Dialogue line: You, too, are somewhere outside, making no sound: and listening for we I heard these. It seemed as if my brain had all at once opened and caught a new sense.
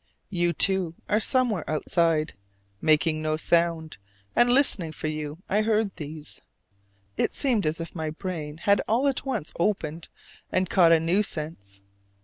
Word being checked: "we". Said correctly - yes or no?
no